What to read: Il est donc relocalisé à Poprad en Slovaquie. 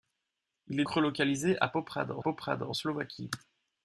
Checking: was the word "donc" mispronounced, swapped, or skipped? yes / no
yes